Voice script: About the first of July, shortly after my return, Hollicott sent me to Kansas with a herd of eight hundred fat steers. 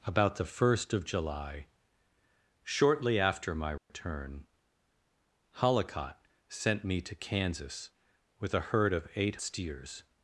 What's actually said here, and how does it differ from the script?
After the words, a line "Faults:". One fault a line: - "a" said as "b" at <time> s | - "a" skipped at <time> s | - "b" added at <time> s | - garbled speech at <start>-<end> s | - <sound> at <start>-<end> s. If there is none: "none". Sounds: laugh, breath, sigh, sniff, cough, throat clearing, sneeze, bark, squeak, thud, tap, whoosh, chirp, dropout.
About the first of July, shortly after my return, Hollicott sent me to Kansas with a herd of eight steers.
Faults:
- dropout at 3.8-3.9 s
- "hundred fat" skipped at 9.3 s